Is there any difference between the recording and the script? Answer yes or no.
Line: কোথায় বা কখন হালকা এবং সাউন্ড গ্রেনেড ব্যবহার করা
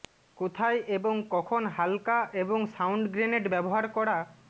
yes